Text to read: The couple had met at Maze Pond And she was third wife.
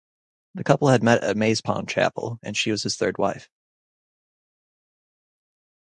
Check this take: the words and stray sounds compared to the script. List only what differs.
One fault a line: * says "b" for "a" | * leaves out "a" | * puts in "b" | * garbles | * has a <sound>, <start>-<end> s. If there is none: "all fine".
* puts in "Chapel"
* puts in "his"